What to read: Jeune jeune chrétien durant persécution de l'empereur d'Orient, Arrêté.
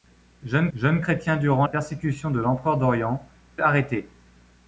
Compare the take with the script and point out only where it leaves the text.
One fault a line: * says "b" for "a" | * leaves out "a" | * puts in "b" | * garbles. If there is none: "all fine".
all fine